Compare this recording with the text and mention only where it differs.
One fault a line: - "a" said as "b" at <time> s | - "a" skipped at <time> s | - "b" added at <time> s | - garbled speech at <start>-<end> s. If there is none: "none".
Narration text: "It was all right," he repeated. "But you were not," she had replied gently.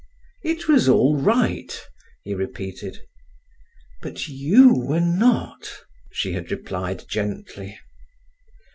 none